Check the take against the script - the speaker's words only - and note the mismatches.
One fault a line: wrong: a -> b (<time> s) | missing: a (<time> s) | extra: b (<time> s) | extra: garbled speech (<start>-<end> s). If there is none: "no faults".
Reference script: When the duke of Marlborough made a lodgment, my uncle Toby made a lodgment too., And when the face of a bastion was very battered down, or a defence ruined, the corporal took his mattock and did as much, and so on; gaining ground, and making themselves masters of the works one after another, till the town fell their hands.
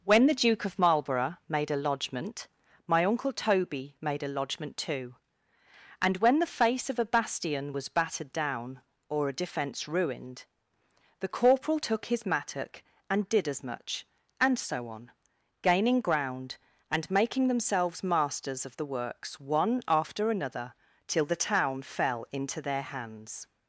missing: very (7.9 s)
extra: into (22.3 s)